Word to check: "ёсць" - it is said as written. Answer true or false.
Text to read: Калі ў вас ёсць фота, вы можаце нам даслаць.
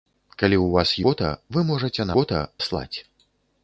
false